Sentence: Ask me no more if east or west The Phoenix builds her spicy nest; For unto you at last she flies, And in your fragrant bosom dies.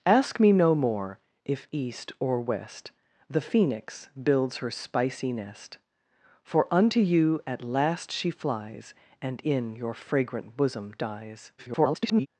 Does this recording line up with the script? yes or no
no